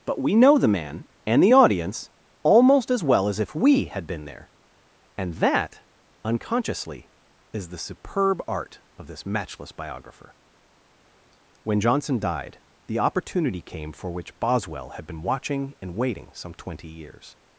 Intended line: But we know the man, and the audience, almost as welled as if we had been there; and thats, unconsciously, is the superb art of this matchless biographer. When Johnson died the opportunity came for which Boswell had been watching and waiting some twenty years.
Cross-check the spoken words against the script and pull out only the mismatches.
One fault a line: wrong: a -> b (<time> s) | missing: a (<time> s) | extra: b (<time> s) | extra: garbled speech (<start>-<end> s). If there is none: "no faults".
wrong: welled -> well (3.0 s)
wrong: thats -> that (5.3 s)